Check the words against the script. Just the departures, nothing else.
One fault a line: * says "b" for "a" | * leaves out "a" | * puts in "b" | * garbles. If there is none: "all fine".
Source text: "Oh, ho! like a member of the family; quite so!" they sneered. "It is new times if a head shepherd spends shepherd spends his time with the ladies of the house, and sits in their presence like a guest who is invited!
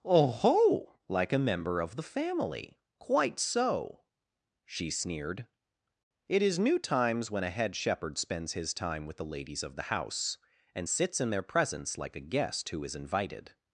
* says "she" for "they"
* says "when" for "if"
* leaves out "shepherd spends"